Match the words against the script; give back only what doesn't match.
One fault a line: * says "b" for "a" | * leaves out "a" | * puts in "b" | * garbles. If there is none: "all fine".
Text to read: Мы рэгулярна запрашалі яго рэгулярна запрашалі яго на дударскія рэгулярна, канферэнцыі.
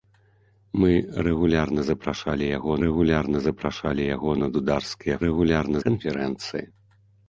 all fine